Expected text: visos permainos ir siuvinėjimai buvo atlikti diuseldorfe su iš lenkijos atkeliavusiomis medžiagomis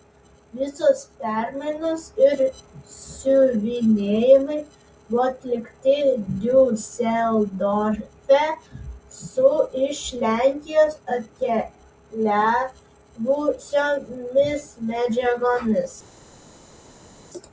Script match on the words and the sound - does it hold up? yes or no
yes